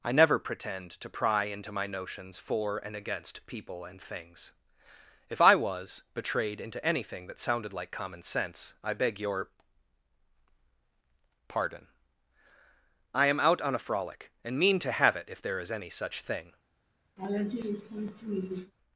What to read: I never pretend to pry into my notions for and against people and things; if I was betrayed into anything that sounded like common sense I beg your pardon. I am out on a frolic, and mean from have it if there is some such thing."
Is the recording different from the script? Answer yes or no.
yes